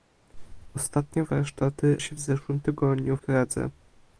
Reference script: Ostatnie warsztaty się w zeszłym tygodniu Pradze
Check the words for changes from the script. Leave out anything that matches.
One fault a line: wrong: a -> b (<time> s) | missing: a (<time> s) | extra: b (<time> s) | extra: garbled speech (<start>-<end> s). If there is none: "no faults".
no faults